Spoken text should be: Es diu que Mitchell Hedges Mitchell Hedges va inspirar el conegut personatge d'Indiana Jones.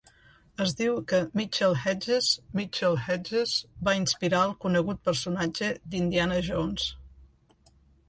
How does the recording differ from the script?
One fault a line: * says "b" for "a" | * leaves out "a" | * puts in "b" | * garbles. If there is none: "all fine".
all fine